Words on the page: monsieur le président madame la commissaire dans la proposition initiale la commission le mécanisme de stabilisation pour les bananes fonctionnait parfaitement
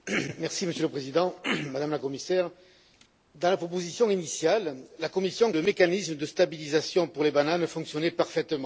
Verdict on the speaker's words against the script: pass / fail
pass